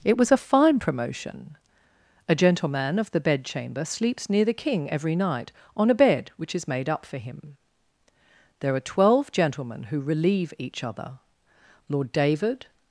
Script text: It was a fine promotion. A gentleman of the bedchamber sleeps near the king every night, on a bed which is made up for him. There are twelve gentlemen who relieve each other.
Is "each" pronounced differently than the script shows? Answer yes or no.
no